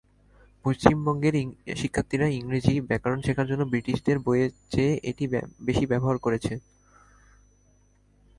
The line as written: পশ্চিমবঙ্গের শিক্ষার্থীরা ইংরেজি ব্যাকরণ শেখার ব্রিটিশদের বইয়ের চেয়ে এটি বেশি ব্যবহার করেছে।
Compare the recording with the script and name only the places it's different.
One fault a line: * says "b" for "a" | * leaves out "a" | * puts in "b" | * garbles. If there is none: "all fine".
* puts in "জন্য"